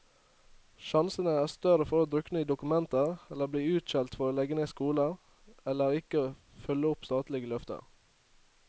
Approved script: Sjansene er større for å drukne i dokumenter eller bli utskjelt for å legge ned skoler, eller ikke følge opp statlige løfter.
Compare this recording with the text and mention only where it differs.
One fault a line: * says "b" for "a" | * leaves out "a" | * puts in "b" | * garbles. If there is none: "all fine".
all fine